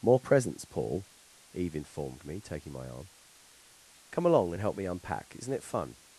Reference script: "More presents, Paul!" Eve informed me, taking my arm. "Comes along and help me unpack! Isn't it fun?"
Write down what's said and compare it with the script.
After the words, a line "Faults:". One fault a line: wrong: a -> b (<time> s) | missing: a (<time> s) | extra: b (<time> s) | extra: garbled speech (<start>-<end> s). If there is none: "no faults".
"More presents, Paul!" Eve informed me, taking my arm. "Come along and help me unpack! Isn't it fun?"
Faults:
wrong: Comes -> Come (4.1 s)